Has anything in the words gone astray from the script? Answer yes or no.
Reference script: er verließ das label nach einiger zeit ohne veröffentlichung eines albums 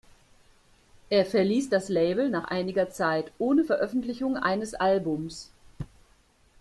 no